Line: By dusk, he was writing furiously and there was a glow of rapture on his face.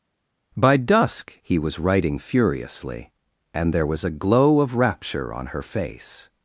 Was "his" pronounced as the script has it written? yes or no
no